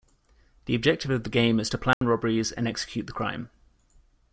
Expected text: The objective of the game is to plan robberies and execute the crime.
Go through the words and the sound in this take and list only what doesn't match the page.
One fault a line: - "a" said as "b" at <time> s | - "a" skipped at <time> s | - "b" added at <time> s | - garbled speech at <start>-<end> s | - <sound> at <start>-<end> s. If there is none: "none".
- dropout at 1.9-2.0 s